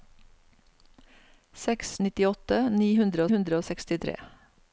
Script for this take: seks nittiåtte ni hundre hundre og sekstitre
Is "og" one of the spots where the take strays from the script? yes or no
no